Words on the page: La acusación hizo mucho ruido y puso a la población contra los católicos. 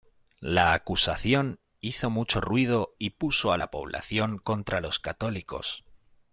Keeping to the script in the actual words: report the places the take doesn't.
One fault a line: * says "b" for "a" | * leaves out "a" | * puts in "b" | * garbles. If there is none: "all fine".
all fine